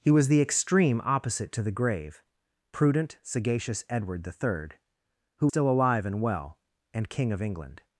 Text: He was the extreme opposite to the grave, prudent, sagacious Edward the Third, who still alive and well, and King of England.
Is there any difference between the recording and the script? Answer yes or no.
no